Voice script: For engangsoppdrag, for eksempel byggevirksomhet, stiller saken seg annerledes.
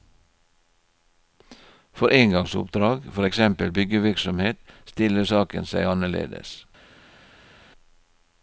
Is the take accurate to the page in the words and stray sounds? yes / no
yes